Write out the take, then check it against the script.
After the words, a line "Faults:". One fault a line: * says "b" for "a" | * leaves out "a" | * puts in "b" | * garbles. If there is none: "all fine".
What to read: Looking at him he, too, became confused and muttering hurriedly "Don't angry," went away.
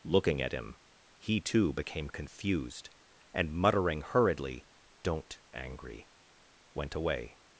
Looking at him he, too, became confused and muttering hurriedly "Don't angry," went away.
Faults:
all fine